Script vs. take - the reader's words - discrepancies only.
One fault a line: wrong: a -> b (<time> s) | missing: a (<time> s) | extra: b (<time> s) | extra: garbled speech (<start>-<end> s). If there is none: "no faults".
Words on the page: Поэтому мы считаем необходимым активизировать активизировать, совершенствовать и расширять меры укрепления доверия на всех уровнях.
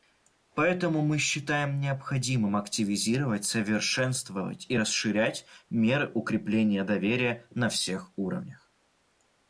missing: активизировать (3.5 s)